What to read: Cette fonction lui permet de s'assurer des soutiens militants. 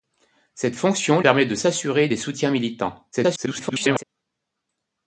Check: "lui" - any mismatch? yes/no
yes